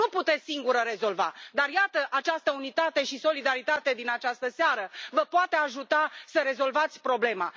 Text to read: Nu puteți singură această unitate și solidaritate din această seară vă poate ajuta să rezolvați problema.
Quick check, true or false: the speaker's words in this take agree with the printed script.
false